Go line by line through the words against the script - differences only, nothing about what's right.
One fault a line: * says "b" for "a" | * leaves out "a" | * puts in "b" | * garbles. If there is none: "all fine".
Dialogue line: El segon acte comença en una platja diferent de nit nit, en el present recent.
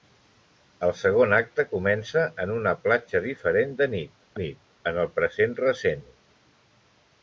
all fine